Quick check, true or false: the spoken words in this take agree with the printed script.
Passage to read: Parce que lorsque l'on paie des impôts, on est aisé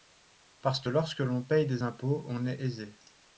true